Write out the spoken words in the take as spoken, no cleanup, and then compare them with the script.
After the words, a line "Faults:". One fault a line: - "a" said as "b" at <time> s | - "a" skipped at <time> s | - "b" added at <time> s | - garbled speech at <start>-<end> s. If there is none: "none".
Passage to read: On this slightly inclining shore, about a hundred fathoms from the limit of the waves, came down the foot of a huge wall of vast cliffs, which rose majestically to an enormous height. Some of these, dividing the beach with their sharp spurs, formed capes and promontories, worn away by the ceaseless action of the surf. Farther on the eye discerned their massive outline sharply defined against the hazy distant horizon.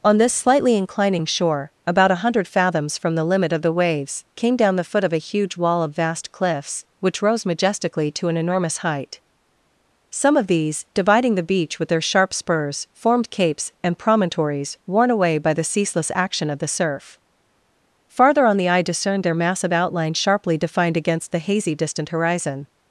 On this slightly inclining shore, about a hundred fathoms from the limit of the waves, came down the foot of a huge wall of vast cliffs, which rose majestically to an enormous height. Some of these, dividing the beach with their sharp spurs, formed capes and promontories, worn away by the ceaseless action of the surf. Farther on the eye discerned their massive outline sharply defined against the hazy distant horizon.
Faults:
none